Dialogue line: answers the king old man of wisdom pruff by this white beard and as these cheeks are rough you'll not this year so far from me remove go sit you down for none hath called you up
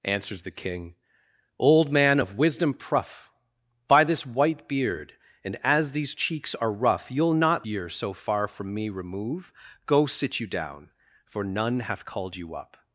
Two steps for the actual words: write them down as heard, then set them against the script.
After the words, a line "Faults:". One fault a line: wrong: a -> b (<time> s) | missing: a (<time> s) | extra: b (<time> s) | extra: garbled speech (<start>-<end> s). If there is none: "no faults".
answers the king old man of wisdom pruff by this white beard and as these cheeks are rough you'll not year so far from me remove go sit you down for none hath called you up
Faults:
missing: this (7.6 s)